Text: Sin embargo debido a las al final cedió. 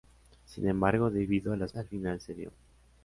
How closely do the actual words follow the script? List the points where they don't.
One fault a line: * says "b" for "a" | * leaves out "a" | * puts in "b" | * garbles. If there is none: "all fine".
all fine